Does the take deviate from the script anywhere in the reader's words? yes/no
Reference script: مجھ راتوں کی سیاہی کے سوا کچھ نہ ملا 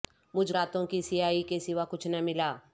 no